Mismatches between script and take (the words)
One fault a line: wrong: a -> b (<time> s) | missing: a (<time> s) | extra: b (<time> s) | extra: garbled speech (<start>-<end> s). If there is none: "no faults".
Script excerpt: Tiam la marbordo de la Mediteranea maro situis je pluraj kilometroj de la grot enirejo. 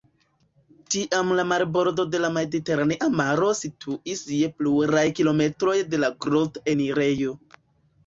no faults